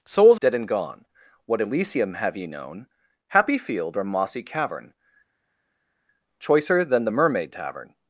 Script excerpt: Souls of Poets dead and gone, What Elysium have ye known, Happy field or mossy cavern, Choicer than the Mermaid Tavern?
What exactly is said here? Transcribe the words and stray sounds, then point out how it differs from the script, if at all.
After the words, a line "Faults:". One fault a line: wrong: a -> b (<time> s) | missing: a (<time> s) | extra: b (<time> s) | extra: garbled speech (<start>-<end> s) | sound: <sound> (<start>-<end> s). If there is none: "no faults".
Souls dead and gone, What Elysium have ye known, Happy field or mossy cavern, Choicer than the Mermaid Tavern?
Faults:
missing: of Poets (0.4 s)